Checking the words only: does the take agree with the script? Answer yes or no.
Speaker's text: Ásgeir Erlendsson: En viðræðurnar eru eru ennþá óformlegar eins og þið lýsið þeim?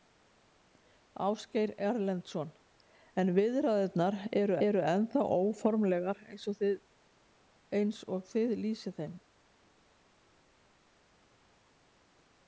yes